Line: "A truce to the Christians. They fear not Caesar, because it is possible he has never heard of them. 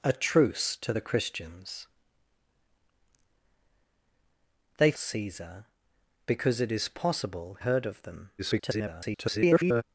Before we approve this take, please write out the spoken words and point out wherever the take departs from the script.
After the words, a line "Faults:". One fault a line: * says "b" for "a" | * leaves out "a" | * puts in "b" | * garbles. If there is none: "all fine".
"A truce to the Christians. They Caesar, because it is possible heard of them. [garbled]
Faults:
* leaves out "fear not"
* leaves out "he has never"
* garbles